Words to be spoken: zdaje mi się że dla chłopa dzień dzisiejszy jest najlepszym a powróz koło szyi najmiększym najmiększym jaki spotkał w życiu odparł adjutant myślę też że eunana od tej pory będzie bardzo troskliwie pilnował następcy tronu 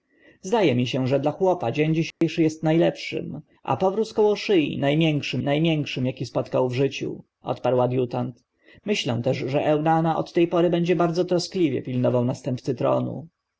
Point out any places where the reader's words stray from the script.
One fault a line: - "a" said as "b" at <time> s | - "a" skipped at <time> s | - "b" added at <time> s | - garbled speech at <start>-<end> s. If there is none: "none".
none